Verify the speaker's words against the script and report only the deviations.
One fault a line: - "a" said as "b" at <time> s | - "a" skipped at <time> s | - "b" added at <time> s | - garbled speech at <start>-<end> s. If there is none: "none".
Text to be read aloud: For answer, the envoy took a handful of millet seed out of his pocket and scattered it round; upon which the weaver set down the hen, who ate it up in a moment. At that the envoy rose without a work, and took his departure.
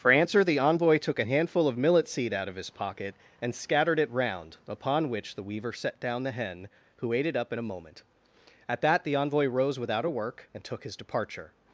none